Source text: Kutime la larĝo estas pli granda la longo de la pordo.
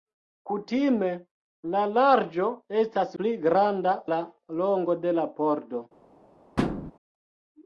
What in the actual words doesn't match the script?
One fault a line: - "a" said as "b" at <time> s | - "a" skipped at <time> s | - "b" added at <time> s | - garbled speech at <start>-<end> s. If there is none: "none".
none